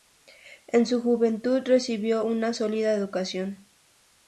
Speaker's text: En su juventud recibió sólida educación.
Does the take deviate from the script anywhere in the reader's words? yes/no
yes